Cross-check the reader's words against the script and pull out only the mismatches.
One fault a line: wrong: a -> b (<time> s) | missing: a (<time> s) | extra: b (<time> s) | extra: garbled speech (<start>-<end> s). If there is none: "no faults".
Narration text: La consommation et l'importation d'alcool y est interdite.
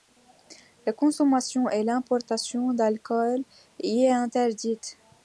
no faults